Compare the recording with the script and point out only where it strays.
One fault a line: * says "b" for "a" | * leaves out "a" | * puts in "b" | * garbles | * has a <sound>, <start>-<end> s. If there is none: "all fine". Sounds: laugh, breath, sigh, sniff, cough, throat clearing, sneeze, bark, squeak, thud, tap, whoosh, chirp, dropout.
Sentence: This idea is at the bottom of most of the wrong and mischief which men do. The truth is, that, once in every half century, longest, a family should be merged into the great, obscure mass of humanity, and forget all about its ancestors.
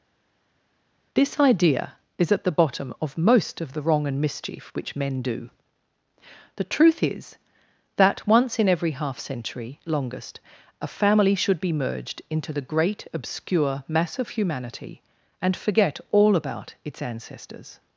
all fine